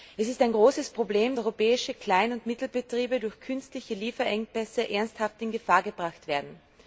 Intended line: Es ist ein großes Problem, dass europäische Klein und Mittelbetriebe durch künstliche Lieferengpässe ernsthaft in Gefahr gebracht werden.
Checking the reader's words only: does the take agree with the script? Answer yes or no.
no